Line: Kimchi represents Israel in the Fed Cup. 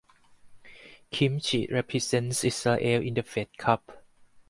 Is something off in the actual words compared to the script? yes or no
no